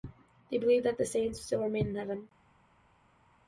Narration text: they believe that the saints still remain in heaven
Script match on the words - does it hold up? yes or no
yes